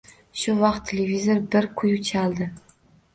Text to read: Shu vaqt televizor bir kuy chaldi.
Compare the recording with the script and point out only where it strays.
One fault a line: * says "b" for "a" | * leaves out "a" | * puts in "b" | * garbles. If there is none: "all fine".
all fine